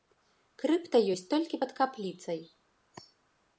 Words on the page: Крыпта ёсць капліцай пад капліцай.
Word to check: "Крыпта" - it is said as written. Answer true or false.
true